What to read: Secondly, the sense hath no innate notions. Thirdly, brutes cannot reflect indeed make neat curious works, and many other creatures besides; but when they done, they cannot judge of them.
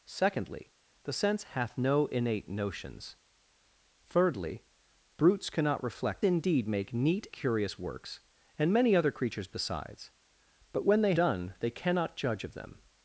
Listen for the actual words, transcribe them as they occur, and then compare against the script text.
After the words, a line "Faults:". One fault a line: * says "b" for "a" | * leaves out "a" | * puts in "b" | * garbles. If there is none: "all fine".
Secondly, the sense hath no innate notions. Thirdly, brutes cannot reflect indeed make neat curious works, and many other creatures besides; but when they done, they cannot judge of them.
Faults:
all fine